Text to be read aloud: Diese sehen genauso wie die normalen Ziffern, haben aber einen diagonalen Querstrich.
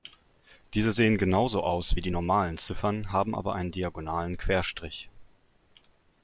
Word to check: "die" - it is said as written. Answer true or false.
true